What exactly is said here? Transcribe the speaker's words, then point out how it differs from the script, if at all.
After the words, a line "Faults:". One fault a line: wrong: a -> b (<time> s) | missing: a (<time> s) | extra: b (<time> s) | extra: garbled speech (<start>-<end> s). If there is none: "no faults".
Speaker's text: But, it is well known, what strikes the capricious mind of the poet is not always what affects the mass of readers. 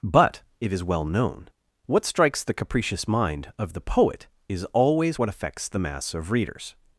But, it is well known, what strikes the capricious mind of the poet is always what affects the mass of readers.
Faults:
missing: not (4.7 s)